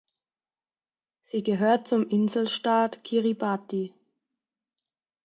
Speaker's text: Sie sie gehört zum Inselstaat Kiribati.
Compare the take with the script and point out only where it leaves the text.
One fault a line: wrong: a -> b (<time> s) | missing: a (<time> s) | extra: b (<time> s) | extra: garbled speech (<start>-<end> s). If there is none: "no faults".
missing: sie (1.4 s)